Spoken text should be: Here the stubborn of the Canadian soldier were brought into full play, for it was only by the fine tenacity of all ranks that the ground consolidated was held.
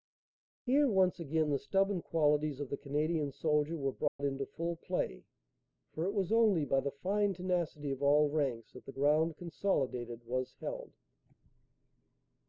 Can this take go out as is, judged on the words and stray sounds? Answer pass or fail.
fail